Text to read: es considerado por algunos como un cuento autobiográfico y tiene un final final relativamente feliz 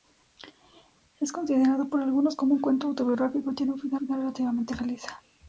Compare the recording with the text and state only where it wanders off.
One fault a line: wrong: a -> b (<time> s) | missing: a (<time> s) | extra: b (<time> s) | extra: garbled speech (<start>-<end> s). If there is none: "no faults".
no faults